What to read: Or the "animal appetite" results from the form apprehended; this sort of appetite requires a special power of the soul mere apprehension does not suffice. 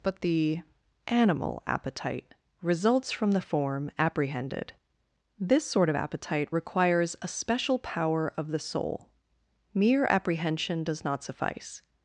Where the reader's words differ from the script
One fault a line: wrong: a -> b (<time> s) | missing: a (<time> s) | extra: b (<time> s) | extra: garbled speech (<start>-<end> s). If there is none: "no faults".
wrong: Or -> But (0.0 s)